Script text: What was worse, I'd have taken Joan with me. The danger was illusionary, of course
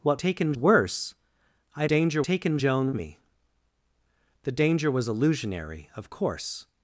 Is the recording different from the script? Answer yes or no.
yes